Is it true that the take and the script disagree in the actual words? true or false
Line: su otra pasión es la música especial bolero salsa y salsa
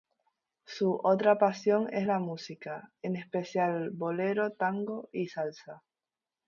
true